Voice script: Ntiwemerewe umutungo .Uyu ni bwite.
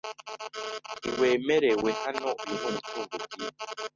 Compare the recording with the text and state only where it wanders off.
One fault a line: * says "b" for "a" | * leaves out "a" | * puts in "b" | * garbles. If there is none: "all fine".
* says "hano" for "umutungo"
* puts in "umutungo"